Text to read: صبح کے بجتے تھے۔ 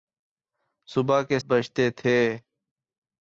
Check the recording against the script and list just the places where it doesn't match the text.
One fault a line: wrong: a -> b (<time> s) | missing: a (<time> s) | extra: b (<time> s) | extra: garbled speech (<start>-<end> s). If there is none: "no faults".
no faults